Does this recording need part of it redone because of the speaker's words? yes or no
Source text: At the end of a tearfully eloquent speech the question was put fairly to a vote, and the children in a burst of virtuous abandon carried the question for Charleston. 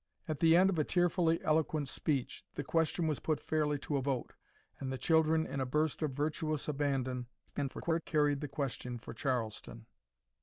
yes